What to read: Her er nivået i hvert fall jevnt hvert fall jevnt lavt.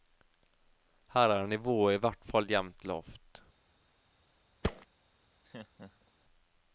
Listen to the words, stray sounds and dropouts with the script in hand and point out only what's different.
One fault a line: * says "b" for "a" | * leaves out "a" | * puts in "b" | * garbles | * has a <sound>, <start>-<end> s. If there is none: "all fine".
* leaves out "hvert fall jevnt"
* has a thud, 4.6-4.9 s
* has a laugh, 5.4-6.1 s